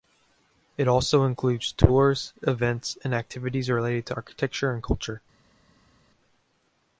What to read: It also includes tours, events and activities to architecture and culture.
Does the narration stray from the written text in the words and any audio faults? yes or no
yes